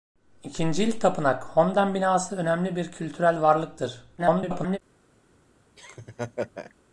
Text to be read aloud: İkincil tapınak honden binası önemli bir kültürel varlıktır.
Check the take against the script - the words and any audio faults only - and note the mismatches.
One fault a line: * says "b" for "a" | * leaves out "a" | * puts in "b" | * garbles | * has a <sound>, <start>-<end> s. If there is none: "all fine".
* garbles
* has a laugh, 5.8-6.7 s